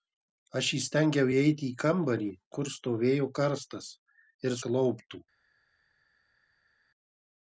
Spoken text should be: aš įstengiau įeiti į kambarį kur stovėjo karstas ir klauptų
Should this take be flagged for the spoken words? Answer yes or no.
no